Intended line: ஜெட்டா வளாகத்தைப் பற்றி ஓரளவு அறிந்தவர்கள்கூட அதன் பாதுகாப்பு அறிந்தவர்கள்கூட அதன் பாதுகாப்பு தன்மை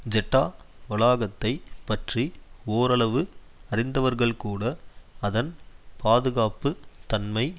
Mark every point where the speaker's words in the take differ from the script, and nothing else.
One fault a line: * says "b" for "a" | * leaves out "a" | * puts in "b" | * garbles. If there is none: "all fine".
* leaves out "அறிந்தவர்கள்கூட அதன் பாதுகாப்பு"